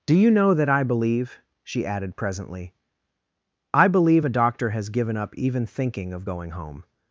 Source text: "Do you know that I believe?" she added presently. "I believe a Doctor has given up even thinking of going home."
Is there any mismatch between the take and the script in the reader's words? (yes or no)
no